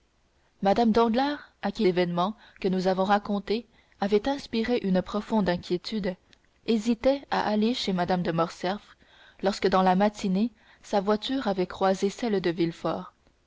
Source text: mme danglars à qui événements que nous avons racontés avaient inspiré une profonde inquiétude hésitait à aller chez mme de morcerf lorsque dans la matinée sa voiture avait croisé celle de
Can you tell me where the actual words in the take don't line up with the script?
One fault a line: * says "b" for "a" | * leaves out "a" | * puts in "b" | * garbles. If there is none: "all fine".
all fine